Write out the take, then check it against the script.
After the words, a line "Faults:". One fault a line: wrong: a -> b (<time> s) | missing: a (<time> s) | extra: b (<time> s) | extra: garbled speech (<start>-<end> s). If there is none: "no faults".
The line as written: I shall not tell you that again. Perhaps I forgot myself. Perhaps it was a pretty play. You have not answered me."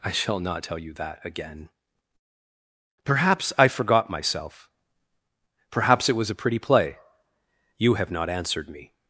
I shall not tell you that again. Perhaps I forgot myself. Perhaps it was a pretty play. You have not answered me."
Faults:
no faults